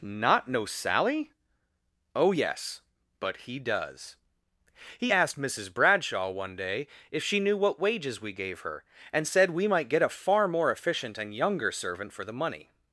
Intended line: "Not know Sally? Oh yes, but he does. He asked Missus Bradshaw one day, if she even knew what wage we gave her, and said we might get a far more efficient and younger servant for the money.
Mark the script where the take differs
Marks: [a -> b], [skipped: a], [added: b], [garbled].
"Not know Sally? Oh yes, but he does. He asked Missus Bradshaw one day, if she [skipped: even] knew what [wage -> wages] we gave her, and said we might get a far more efficient and younger servant for the money.